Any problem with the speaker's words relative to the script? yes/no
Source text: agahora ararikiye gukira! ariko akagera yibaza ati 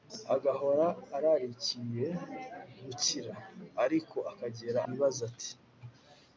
no